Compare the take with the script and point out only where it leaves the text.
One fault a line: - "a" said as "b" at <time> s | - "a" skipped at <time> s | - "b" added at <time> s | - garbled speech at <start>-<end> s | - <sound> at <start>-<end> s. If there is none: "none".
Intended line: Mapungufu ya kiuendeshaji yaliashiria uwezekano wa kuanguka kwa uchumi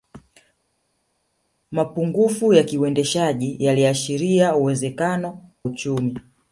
- "wa kuanguka kwa" skipped at 5.4 s